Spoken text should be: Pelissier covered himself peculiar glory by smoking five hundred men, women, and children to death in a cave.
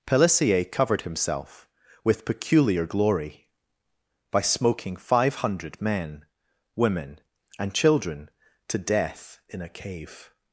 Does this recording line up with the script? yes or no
no